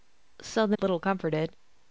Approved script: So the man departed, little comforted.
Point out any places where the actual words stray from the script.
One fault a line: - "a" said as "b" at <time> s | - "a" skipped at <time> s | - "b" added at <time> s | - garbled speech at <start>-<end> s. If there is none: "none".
- "man departed" skipped at 0.8 s